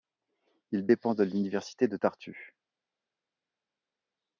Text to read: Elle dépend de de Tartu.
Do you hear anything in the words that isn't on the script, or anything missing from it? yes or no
yes